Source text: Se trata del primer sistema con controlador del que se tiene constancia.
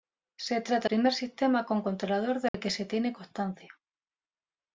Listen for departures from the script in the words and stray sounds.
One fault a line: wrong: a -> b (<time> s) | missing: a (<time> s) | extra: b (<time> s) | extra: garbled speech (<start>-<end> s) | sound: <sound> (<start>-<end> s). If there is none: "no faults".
missing: del (0.9 s)
sound: dropout (2.5-2.5 s)